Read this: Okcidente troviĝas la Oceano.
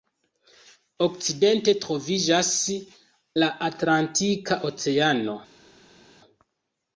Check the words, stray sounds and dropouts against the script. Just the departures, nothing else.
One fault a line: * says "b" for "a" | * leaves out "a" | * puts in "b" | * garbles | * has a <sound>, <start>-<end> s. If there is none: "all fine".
* puts in "Atlantika"